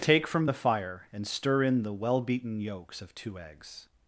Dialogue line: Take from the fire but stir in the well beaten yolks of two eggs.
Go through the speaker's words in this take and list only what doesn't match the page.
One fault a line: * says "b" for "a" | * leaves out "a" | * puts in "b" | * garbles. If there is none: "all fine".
* says "and" for "but"